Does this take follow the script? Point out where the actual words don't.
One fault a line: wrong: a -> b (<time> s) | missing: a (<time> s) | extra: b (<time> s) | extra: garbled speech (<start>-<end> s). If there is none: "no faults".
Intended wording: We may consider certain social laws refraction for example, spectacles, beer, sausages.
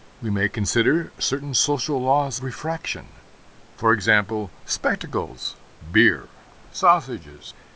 no faults